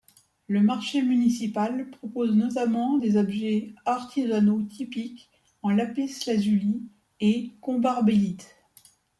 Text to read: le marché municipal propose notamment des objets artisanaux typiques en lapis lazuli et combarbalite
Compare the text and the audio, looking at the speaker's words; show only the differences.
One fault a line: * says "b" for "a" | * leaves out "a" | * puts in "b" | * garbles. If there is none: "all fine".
all fine